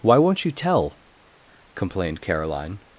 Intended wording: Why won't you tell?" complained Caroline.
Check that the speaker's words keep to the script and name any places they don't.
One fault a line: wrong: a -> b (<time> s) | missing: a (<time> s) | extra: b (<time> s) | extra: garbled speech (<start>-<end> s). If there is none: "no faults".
no faults